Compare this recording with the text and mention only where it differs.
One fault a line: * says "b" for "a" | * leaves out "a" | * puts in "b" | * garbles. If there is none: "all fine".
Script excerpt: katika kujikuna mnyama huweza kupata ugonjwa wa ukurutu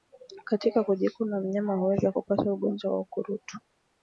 all fine